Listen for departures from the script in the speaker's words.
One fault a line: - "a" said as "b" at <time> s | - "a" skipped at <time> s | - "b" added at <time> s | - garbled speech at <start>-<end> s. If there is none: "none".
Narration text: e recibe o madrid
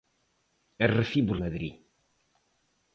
none